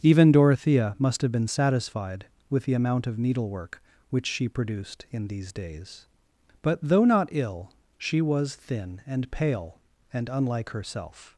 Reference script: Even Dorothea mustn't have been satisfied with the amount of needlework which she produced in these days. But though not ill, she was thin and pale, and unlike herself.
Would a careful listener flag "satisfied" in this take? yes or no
no